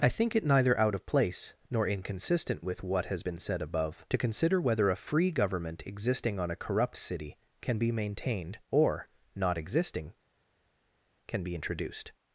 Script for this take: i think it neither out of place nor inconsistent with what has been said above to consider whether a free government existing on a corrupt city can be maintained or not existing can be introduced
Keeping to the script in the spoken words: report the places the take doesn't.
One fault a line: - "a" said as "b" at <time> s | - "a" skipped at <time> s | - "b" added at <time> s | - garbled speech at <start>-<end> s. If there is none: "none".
none